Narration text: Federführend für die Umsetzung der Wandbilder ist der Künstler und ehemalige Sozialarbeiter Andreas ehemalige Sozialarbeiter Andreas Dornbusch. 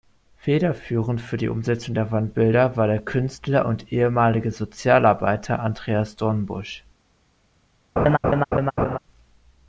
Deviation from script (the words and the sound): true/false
true